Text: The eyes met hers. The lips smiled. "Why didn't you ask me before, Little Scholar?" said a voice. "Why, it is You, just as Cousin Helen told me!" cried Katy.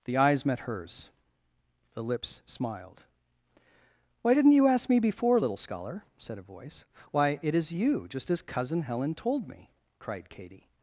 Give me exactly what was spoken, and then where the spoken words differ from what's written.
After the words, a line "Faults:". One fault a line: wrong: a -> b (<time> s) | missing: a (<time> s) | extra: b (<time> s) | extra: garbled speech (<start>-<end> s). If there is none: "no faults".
The eyes met hers. The lips smiled. "Why didn't you ask me before, Little Scholar?" said a voice. "Why, it is You, just as Cousin Helen told me!" cried Katy.
Faults:
no faults